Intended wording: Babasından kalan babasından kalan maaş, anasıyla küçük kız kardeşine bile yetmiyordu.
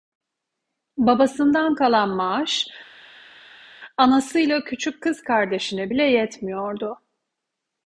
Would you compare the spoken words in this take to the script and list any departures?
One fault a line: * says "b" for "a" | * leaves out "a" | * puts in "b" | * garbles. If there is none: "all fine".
* leaves out "babasından kalan"